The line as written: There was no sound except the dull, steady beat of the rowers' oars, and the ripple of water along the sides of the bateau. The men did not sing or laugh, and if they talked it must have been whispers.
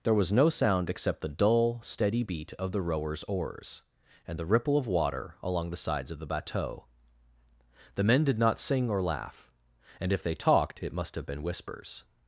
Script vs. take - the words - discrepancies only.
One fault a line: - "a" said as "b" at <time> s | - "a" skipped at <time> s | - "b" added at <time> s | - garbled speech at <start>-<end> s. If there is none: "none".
none